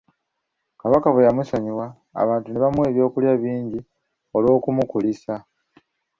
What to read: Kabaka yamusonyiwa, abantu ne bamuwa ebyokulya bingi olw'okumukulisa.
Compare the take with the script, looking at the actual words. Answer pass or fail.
fail